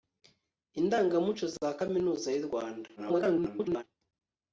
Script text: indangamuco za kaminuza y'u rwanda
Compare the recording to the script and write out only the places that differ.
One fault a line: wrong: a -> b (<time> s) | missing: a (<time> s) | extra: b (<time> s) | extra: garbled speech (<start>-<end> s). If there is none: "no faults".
extra: garbled speech (3.0-3.8 s)